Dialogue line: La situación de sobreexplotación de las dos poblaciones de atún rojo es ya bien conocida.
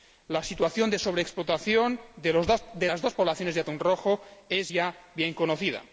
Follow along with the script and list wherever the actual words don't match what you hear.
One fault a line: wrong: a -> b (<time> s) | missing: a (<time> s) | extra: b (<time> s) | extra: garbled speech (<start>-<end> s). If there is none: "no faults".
no faults